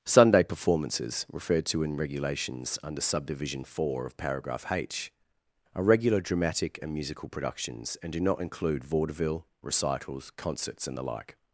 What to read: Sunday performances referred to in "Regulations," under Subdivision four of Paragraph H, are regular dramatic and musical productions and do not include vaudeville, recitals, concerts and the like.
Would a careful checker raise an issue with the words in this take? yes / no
no